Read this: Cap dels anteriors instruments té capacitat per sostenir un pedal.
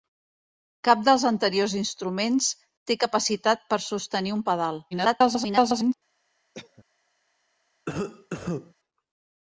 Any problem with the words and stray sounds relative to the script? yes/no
yes